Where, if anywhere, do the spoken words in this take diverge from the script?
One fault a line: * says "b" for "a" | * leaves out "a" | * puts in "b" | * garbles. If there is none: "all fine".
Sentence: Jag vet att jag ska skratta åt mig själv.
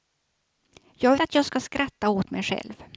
* leaves out "vet"